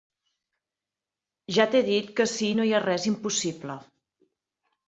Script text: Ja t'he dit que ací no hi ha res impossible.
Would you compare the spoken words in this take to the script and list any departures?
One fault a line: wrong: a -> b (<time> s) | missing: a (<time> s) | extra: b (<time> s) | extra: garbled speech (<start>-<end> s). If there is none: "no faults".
no faults